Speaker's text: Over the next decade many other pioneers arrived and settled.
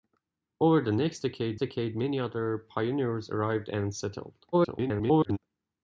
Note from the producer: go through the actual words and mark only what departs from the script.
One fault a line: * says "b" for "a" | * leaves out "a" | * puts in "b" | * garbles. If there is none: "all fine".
* puts in "decade"
* garbles